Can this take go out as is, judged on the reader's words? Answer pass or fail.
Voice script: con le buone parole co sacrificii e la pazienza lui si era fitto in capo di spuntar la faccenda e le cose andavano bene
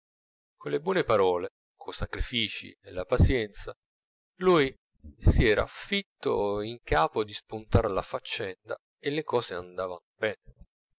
pass